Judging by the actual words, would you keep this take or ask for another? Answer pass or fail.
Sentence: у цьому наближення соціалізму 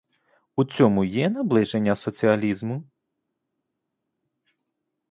fail